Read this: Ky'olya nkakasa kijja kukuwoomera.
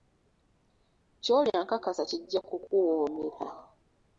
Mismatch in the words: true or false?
false